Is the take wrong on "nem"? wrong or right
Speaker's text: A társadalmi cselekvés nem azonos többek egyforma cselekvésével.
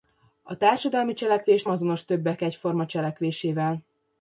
wrong